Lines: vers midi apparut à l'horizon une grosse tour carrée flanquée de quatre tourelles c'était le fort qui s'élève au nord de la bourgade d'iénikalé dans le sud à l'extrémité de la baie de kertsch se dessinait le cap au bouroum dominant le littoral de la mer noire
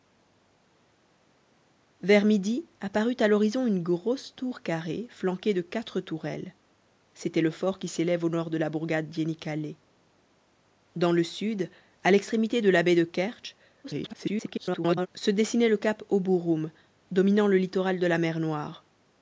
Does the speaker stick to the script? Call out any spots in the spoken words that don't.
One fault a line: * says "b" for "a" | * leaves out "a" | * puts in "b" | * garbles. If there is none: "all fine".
* garbles